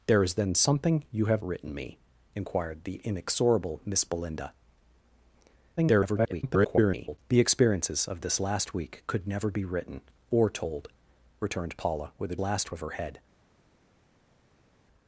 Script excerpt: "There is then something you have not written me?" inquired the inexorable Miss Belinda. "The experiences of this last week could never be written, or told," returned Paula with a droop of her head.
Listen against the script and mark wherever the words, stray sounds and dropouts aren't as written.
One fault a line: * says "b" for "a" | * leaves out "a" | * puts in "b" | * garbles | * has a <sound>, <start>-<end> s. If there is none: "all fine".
* leaves out "not"
* garbles
* says "last" for "droop"